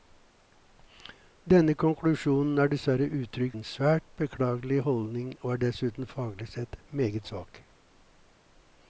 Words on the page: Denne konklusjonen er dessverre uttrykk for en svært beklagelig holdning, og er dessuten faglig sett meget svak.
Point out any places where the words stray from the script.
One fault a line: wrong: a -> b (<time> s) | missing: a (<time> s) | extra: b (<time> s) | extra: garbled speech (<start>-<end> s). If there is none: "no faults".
missing: for (3.6 s)